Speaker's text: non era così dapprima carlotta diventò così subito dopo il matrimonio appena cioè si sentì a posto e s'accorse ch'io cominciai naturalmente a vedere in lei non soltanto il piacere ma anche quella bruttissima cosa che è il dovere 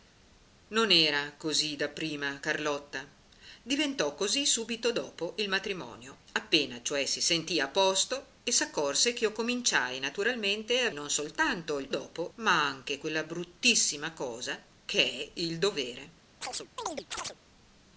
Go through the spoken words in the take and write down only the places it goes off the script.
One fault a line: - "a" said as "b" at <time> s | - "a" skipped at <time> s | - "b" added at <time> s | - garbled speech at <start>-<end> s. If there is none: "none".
- "vedere in lei" skipped at 10.9 s
- "piacere" said as "dopo" at 11.9 s